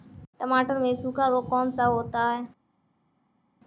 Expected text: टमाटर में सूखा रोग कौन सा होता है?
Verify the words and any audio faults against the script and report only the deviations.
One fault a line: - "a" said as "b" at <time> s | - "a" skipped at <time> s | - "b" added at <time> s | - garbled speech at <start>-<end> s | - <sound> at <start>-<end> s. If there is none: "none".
none